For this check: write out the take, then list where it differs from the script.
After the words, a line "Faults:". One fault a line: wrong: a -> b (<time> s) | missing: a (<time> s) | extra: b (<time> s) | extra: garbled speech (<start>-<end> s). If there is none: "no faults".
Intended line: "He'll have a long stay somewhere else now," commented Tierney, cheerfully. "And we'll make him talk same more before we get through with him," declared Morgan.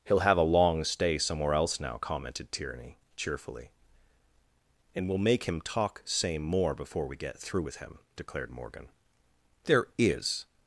"He'll have a long stay somewhere else now," commented Tierney, cheerfully. "And we'll make him talk same more before we get through with him," declared Morgan. "There is
Faults:
extra: There is (9.6 s)